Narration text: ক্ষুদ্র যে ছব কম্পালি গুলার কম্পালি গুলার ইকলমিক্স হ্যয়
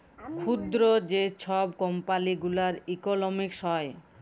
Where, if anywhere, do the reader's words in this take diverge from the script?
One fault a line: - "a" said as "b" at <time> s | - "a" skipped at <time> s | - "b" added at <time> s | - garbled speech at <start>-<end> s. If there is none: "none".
- "কম্পালি গুলার" skipped at 2.7 s